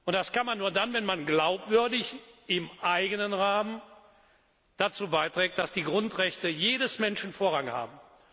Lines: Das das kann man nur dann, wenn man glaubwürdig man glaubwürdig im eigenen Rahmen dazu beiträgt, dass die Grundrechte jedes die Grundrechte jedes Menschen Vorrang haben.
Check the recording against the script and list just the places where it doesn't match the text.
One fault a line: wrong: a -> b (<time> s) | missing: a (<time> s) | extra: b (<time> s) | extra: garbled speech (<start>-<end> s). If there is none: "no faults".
missing: das (0.3 s)
missing: man glaubwürdig (2.1 s)
missing: die Grundrechte jedes (7.0 s)